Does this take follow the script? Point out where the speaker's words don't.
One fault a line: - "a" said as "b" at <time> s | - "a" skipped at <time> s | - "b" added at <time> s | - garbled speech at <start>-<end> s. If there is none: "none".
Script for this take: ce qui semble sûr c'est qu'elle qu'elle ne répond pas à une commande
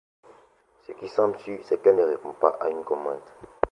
- "qu'elle" skipped at 2.0 s